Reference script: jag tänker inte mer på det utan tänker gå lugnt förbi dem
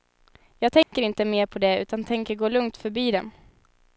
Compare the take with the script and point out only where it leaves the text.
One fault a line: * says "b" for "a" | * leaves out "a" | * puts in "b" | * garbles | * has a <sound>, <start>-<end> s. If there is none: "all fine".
* has a dropout, 0.8-0.9 s